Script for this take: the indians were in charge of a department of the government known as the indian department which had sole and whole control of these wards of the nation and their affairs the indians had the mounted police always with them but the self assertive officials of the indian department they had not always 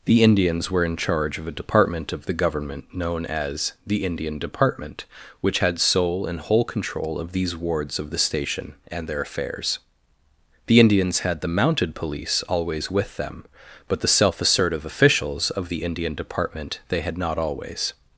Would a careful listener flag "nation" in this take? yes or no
yes